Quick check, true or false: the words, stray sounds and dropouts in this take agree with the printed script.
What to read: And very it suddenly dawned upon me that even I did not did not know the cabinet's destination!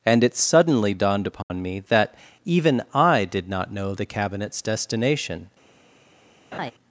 false